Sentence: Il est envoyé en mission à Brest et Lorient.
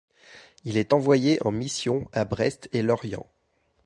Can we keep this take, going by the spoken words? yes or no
yes